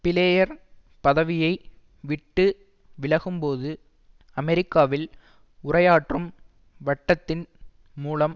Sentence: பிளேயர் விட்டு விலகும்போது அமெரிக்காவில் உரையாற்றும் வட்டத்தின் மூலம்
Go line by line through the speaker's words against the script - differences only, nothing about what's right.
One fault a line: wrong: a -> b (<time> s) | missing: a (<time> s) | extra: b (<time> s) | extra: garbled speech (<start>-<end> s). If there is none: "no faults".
extra: பதவியை (1.0 s)